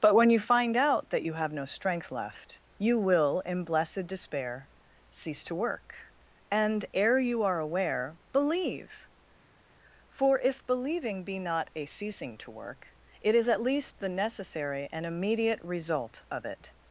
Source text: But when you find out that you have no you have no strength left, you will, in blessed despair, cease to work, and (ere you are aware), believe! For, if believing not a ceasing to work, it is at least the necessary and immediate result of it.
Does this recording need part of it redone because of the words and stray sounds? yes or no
yes